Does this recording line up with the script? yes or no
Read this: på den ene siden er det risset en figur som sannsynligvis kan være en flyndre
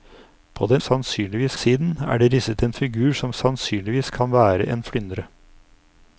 no